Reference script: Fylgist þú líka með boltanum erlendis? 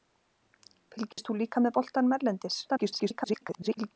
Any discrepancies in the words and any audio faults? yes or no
yes